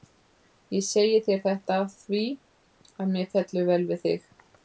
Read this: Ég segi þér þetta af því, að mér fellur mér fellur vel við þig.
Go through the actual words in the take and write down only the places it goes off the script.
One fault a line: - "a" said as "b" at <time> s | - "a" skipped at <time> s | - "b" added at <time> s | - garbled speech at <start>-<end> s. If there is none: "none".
- "mér fellur" skipped at 3.7 s